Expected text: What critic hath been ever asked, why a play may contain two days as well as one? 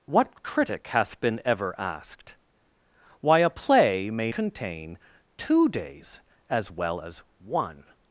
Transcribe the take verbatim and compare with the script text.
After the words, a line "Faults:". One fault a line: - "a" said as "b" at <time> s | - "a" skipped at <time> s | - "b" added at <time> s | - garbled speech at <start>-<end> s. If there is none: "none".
What critic hath been ever asked, why a play may contain two days as well as one?
Faults:
none